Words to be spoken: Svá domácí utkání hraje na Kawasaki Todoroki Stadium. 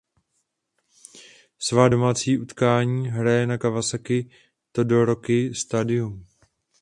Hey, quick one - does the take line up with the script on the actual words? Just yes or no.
yes